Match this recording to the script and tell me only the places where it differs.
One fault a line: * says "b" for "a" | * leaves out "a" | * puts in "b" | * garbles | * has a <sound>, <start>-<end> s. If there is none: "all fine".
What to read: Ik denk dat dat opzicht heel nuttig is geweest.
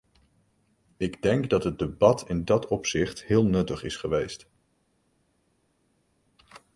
* puts in "het debat in"